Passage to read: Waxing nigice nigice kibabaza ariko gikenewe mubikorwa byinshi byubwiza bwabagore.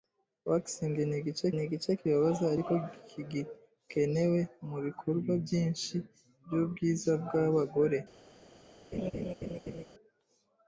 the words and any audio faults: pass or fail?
fail